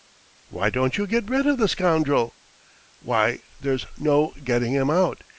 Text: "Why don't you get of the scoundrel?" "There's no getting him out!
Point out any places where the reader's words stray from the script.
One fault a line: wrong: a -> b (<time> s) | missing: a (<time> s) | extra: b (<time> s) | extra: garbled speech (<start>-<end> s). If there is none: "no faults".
extra: rid (1.3 s)
extra: Why (3.0 s)